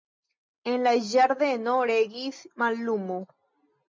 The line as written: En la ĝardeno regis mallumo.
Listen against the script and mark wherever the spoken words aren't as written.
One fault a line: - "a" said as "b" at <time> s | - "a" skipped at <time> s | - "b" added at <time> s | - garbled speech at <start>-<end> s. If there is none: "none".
none